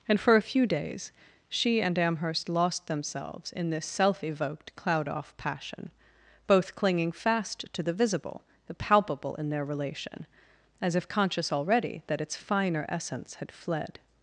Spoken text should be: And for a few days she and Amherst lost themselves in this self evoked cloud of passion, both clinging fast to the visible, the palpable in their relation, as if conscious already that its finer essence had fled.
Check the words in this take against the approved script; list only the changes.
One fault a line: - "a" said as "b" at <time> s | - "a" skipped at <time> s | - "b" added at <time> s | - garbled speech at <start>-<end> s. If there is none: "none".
- "of" said as "off" at 5.1 s